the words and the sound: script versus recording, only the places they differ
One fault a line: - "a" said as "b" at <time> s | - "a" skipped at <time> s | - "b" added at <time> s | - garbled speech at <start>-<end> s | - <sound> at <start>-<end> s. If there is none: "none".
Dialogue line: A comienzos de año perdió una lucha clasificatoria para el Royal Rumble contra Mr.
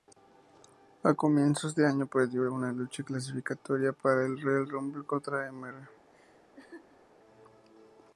- laugh at 6.1-7.0 s